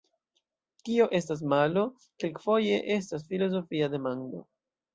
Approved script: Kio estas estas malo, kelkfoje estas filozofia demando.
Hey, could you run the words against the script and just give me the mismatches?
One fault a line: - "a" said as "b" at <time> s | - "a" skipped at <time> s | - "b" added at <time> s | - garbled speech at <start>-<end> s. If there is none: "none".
- "estas" skipped at 1.4 s